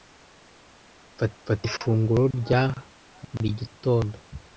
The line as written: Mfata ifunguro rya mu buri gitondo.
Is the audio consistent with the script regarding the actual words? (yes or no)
no